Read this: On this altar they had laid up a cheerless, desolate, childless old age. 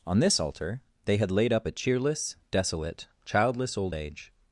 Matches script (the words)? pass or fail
pass